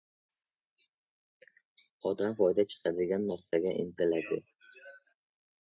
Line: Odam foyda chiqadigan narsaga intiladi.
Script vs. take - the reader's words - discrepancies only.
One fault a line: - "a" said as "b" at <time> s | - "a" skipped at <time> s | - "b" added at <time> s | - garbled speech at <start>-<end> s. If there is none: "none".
none